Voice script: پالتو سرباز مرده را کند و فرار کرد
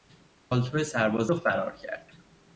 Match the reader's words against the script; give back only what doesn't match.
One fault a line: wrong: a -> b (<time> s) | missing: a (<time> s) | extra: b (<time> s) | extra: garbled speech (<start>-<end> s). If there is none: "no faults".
missing: مرده را کند (1.3 s)